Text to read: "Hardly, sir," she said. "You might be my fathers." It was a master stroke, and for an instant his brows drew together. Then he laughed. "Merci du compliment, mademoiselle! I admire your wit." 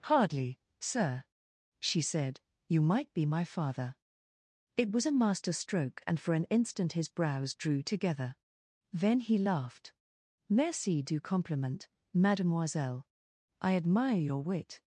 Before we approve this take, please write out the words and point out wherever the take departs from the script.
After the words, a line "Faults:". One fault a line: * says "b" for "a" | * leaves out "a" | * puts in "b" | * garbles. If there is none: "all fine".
"Hardly, sir," she said. "You might be my father." It was a master stroke, and for an instant his brows drew together. Then he laughed. "Merci du compliment, mademoiselle! I admire your wit."
Faults:
* says "father" for "fathers"